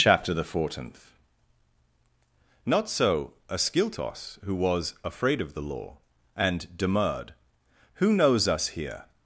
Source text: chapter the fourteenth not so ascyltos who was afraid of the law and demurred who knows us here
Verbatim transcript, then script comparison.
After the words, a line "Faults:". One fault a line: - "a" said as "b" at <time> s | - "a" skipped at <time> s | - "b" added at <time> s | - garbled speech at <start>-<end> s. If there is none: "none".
chapter the fourteenth not so ascyltos who was afraid of the law and demurred who knows us here
Faults:
none